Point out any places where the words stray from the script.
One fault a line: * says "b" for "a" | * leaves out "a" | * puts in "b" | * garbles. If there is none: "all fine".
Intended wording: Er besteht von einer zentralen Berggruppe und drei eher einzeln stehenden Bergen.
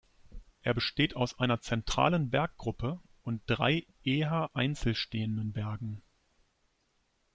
* says "aus" for "von"